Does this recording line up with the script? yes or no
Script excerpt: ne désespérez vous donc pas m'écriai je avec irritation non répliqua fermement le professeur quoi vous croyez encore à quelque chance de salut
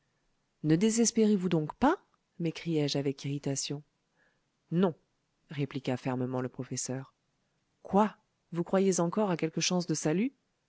yes